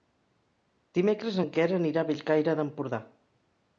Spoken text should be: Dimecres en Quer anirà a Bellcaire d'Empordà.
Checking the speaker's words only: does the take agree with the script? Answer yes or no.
yes